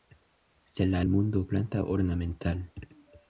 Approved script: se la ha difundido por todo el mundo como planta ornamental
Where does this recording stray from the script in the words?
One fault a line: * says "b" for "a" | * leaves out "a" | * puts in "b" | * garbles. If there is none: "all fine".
* leaves out "difundido por todo"
* leaves out "como"